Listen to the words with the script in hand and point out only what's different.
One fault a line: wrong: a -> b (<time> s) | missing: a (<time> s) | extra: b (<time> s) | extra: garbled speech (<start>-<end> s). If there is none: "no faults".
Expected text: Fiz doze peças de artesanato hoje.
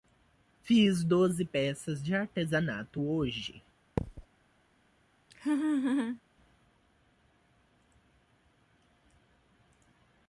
no faults